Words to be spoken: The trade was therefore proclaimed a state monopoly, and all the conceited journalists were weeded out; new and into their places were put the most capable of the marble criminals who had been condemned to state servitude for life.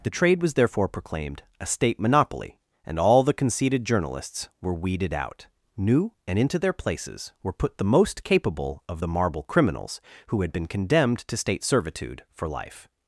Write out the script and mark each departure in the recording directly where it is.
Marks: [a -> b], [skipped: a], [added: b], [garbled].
The trade was therefore proclaimed a state monopoly, and all the conceited journalists were weeded out; new and into their places were put the most capable of the marble criminals who had been condemned to state servitude for life.